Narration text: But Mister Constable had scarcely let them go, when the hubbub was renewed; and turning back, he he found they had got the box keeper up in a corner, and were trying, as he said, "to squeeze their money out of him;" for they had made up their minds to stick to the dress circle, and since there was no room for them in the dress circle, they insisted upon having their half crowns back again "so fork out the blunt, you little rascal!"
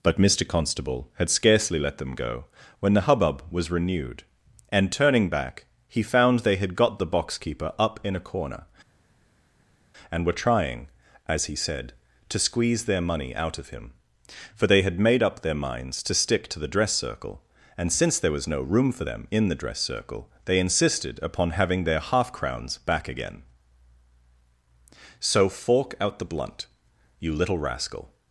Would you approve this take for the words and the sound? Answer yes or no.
no